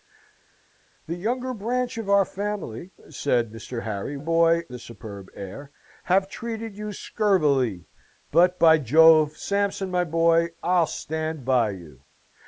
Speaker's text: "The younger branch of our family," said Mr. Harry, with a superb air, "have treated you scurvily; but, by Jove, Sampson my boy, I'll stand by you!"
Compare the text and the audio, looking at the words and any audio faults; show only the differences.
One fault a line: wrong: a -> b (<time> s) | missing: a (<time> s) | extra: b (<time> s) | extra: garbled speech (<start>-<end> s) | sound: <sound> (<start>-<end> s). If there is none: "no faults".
wrong: with -> boy (4.2 s)